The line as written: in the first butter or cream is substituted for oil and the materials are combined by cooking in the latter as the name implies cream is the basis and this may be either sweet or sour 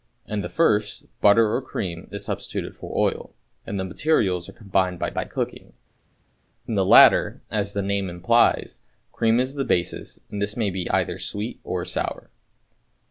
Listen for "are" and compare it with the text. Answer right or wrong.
right